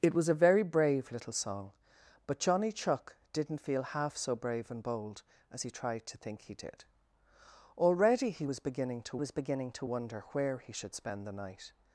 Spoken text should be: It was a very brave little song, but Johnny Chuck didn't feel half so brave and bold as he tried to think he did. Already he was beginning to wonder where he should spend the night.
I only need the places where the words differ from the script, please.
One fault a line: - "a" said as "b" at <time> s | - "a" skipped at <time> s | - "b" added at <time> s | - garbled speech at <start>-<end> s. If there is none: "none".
- "was beginning to" added at 9.2 s